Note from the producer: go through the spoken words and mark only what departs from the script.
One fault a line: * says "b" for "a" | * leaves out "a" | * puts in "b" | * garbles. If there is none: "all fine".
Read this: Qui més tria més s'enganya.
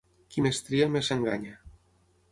all fine